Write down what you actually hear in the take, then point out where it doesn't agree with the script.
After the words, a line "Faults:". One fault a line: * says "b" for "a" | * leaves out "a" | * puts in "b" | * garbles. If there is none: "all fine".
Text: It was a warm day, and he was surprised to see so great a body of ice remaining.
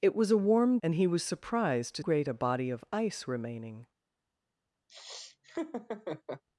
It was a warm and he was surprised to great a body of ice remaining.
Faults:
* leaves out "day"
* leaves out "see so"